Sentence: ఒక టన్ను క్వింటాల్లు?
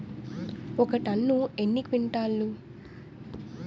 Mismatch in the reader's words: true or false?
true